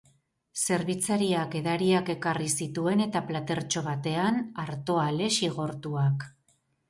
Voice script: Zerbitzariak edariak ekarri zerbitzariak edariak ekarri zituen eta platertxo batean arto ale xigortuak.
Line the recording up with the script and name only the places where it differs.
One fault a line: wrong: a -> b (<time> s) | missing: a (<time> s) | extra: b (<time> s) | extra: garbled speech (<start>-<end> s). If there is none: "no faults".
missing: zerbitzariak edariak ekarri (2.5 s)